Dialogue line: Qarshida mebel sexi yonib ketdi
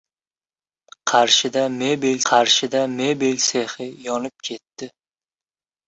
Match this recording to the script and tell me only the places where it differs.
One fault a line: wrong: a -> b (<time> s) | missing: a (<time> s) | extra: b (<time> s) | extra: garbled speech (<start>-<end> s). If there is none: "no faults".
extra: qarshida mebel (2.3 s)